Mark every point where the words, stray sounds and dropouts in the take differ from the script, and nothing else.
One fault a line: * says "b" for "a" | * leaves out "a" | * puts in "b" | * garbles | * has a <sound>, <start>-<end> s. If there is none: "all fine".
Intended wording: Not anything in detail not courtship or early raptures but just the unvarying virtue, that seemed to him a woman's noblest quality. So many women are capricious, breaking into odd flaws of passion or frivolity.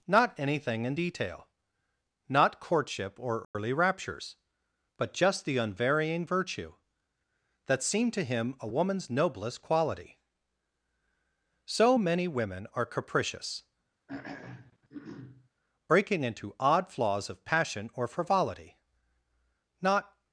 * has a dropout, 3.4-3.5 s
* has a throat clearing, 14.1-15.5 s
* puts in "Not"